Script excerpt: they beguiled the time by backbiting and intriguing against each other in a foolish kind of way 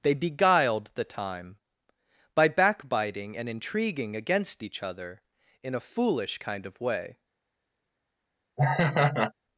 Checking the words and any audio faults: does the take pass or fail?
fail